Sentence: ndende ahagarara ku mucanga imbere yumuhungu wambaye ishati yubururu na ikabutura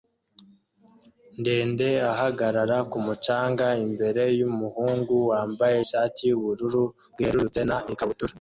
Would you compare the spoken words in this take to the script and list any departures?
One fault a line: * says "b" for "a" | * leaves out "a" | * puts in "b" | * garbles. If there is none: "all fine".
* puts in "bwerurutse"